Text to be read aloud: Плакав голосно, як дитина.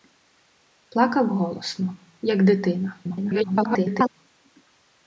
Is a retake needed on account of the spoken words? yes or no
yes